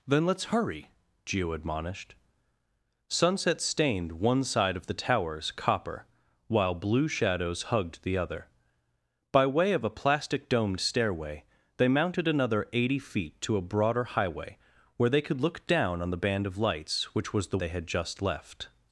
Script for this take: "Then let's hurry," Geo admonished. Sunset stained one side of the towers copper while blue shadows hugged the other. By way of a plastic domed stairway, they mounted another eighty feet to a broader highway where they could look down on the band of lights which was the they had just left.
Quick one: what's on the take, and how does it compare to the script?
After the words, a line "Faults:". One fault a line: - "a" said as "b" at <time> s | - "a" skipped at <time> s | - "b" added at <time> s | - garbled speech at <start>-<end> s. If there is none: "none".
"Then let's hurry," Geo admonished. Sunset stained one side of the towers copper while blue shadows hugged the other. By way of a plastic domed stairway, they mounted another eighty feet to a broader highway where they could look down on the band of lights which was the they had just left.
Faults:
none